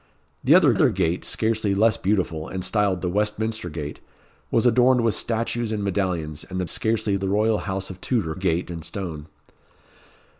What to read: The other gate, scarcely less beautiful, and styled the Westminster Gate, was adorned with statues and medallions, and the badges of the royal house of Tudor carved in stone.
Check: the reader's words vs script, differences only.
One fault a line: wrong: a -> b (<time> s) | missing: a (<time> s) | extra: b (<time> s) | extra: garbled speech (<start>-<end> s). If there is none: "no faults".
extra: other (0.7 s)
wrong: badges -> scarcely (6.7 s)
wrong: carved -> gate (8.3 s)